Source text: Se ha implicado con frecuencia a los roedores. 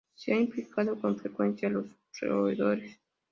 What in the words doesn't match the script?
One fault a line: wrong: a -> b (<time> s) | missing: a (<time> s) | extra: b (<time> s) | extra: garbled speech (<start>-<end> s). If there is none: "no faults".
no faults